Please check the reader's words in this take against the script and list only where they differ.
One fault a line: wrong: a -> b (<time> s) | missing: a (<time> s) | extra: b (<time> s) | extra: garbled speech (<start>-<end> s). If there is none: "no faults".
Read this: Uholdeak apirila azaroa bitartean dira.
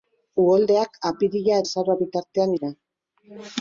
no faults